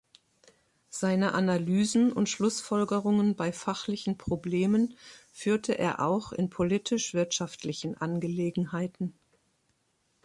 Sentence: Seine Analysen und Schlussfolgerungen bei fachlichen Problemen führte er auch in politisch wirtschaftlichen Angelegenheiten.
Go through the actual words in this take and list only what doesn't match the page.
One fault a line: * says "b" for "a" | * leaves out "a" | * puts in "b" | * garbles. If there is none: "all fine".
all fine